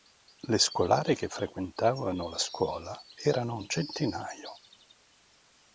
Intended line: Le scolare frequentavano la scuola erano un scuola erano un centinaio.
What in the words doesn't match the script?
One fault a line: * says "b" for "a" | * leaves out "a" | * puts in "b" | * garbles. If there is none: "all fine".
* puts in "che"
* leaves out "scuola erano un"